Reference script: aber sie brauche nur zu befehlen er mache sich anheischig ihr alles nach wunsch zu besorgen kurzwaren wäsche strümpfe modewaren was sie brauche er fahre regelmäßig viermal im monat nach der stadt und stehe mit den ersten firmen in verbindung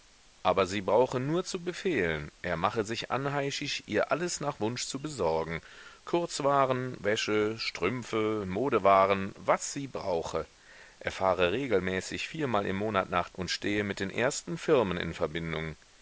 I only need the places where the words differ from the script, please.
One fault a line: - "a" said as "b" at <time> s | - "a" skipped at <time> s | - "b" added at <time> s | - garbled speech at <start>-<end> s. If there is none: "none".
- "der stadt" skipped at 13.3 s